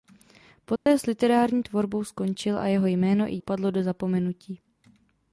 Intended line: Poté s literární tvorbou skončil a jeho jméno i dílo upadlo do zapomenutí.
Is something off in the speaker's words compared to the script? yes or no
yes